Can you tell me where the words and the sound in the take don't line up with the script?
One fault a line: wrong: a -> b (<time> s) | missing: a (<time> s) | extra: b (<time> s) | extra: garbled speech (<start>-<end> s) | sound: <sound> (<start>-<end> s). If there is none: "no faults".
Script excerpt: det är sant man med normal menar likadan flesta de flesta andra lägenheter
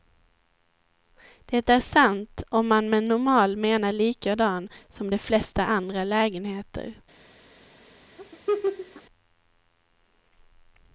extra: om (2.5 s)
wrong: flesta -> som (4.9 s)
sound: laugh (8.2-9.0 s)